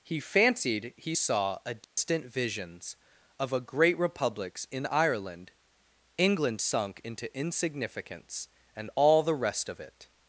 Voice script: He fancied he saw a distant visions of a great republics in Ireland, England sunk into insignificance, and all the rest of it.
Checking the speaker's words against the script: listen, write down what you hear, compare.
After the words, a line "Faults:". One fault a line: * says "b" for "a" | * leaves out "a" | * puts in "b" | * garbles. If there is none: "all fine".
He fancied he saw a distant visions of a great republics in Ireland, England sunk into insignificance, and all the rest of it.
Faults:
all fine